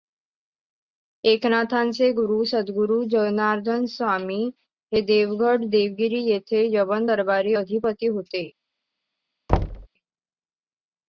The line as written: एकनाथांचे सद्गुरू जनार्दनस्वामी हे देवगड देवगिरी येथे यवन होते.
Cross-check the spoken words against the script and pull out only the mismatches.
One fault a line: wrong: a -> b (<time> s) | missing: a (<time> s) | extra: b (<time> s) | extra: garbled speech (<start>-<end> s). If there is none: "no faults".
extra: गुरू (2.1 s)
extra: दरबारी अधिपती (7.0 s)